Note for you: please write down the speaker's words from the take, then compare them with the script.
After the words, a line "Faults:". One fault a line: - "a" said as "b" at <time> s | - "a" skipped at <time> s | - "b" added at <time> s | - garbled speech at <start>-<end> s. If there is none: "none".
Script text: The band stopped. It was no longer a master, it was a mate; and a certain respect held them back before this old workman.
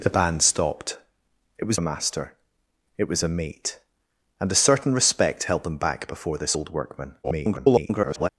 The band stopped. It was a master, it was a mate; and a certain respect held them back before this old workman. [garbled]
Faults:
- "no longer" skipped at 1.8 s
- garbled speech at 7.2-8.3 s